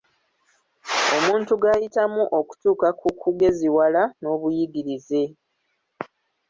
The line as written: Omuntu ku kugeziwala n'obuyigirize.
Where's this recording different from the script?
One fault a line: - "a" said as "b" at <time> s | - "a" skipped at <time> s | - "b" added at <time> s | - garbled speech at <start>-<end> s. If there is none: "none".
- "g'ayitamu okutuuka" added at 1.6 s